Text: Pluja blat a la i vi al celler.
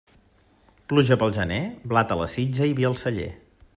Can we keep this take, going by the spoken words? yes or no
no